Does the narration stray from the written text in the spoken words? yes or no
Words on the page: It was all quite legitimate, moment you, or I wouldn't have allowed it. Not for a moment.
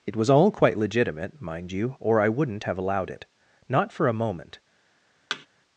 yes